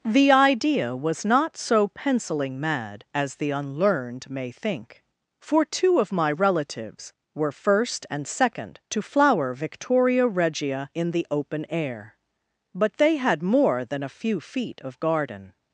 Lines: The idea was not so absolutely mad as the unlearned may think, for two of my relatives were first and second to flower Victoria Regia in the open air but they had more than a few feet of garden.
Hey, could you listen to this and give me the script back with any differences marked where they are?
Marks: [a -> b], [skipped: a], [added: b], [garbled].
The idea was not so [absolutely -> penciling] mad as the unlearned may think, for two of my relatives were first and second to flower Victoria Regia in the open air but they had more than a few feet of garden.